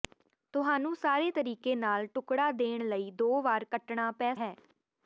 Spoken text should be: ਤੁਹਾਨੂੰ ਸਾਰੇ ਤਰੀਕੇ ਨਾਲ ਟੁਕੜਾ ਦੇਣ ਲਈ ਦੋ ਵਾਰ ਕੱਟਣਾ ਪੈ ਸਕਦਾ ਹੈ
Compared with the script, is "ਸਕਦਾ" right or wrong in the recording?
wrong